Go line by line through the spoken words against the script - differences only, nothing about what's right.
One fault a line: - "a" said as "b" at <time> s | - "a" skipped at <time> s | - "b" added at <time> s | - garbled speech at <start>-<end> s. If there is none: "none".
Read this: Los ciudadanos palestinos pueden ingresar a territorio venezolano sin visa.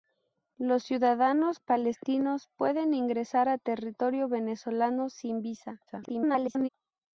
- garbled speech at 5.9-6.7 s